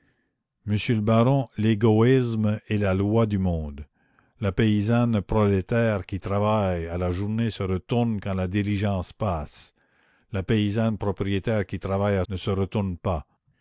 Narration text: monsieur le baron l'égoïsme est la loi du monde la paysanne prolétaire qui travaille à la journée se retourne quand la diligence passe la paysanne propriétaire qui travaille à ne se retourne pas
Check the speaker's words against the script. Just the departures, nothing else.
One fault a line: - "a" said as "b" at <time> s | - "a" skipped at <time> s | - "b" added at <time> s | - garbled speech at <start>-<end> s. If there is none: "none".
none